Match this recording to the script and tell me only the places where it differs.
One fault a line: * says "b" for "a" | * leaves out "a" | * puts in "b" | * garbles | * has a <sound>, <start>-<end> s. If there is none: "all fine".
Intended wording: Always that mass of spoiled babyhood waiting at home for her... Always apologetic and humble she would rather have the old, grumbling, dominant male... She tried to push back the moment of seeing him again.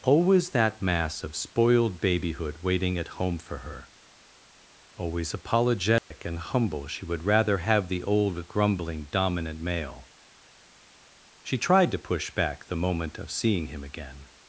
* has a dropout, 6.0-6.1 s